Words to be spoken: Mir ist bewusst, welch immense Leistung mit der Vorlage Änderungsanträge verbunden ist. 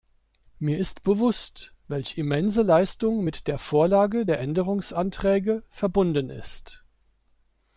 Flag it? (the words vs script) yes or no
yes